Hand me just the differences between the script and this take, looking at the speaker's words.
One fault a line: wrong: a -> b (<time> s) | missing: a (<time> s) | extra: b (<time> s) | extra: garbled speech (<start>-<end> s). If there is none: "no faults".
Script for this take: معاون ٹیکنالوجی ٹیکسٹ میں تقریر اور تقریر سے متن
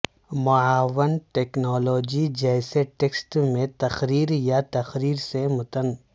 extra: جیسے (2.4 s)
wrong: اور -> یا (4.4 s)